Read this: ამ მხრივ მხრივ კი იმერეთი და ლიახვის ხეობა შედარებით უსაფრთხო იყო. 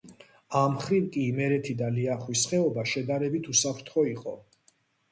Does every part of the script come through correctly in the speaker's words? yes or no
no